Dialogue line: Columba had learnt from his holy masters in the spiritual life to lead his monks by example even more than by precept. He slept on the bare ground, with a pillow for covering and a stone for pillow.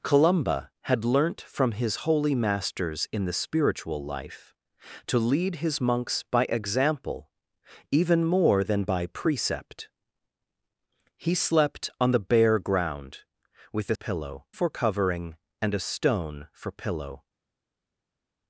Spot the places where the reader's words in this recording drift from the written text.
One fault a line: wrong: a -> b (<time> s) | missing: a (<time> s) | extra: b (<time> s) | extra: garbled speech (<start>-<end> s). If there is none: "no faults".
no faults